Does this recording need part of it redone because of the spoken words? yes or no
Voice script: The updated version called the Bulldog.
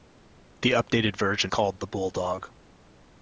no